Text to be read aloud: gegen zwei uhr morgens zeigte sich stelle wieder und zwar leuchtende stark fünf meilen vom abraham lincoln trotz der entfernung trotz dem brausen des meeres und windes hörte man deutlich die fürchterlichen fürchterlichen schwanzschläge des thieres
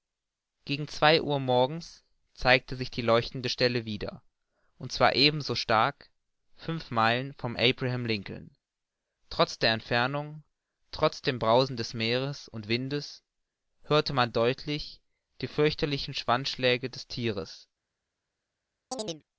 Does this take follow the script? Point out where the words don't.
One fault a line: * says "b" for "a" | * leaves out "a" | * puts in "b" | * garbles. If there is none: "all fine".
* puts in "die leuchtende"
* says "ebenso" for "leuchtende"
* leaves out "fürchterlichen"